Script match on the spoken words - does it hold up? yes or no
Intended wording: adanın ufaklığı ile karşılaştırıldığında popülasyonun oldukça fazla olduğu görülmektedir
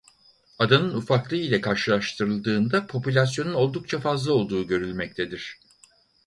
yes